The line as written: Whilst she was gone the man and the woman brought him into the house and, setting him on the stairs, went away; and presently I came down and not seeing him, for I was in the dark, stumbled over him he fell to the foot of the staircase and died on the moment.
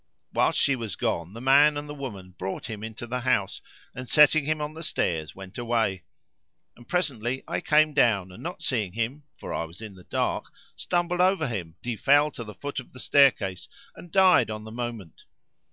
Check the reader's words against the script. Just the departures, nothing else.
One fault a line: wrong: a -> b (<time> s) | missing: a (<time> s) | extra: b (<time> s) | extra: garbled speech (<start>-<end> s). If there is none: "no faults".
no faults